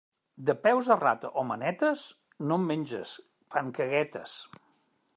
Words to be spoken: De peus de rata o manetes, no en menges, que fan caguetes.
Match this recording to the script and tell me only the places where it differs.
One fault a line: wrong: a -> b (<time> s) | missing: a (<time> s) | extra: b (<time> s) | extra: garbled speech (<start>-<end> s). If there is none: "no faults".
missing: que (3.1 s)